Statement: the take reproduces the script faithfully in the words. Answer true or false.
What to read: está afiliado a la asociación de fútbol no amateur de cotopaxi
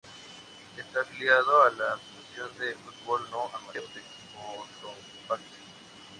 true